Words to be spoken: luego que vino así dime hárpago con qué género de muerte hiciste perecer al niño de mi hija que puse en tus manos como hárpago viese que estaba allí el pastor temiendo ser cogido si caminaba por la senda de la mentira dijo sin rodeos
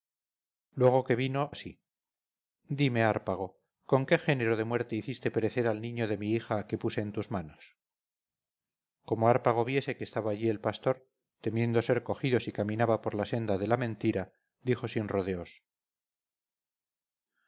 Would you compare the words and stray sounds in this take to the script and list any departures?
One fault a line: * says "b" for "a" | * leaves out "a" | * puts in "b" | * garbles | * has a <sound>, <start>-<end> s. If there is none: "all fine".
all fine